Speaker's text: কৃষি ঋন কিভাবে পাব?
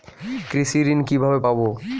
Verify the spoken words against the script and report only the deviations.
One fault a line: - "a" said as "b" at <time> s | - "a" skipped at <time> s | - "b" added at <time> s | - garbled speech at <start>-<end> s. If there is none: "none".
none